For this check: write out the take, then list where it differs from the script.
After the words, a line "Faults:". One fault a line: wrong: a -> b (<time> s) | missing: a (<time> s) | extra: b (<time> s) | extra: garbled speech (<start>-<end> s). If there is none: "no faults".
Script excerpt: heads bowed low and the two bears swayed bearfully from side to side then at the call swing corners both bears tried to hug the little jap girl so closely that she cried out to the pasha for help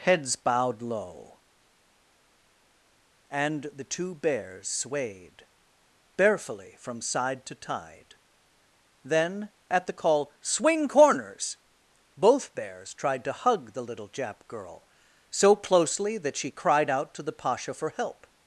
heads bowed low and the two bears swayed bearfully from side to tide then at the call swing corners both bears tried to hug the little jap girl so closely that she cried out to the pasha for help
Faults:
wrong: side -> tide (7.5 s)